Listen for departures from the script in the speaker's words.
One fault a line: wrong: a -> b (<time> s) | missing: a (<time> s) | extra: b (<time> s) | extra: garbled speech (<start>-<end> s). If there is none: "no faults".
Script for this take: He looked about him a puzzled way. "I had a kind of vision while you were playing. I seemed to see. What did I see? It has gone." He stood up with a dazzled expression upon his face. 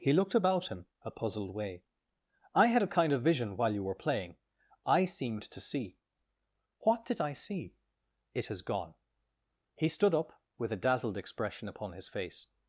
no faults